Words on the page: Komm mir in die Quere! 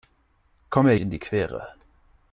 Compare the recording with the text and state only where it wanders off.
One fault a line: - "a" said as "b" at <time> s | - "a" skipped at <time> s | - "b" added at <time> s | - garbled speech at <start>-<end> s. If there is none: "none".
none